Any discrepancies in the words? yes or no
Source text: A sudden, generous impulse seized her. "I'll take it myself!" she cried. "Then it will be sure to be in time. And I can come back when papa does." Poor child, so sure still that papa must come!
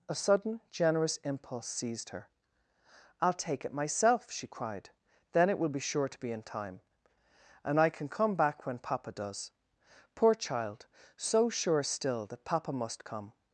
no